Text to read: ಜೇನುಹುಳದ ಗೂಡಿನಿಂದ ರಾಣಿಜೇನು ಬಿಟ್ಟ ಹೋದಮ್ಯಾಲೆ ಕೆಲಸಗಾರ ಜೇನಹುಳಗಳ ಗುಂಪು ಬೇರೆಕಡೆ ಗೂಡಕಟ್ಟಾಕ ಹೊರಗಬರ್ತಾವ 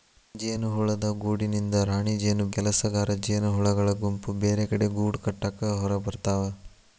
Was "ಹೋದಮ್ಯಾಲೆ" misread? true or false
true